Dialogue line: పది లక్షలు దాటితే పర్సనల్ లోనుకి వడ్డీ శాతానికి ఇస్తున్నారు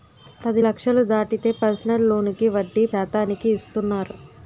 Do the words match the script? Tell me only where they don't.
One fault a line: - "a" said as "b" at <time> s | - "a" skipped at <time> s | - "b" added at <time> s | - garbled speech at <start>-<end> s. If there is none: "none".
none